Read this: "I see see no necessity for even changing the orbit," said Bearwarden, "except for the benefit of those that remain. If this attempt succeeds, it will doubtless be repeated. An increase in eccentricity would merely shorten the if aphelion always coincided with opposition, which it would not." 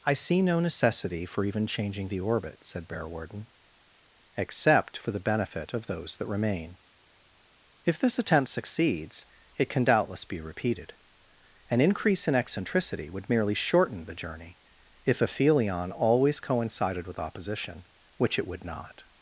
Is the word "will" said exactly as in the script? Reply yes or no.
no